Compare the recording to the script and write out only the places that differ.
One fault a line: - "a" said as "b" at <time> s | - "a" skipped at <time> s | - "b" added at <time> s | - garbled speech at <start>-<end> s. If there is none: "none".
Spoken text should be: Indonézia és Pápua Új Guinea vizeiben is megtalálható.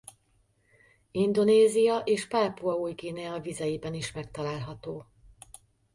none